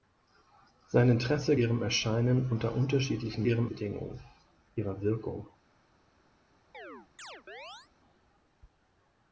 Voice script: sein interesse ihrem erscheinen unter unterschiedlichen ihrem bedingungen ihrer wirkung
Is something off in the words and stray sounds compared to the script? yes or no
yes